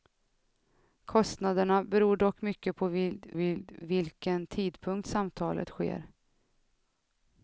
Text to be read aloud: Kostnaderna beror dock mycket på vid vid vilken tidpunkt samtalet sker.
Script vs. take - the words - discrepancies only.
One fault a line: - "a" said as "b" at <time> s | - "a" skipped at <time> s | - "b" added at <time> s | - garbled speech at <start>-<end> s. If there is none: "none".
none